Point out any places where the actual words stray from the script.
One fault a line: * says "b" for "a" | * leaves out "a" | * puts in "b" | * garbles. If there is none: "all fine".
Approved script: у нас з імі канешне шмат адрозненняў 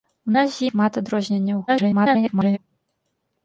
* leaves out "імі канешне"
* garbles